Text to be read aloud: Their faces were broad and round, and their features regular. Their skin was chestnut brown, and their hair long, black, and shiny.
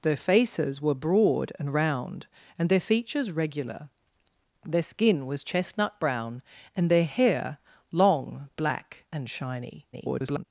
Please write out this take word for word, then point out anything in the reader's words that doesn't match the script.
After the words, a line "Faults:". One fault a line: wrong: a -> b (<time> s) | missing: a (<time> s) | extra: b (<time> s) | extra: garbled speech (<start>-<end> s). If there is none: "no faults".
Their faces were broad and round, and their features regular. Their skin was chestnut brown, and their hair long, black, and shiny. [garbled]
Faults:
extra: garbled speech (9.9-10.4 s)